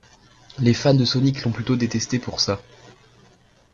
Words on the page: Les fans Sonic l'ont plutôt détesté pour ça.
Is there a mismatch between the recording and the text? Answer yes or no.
yes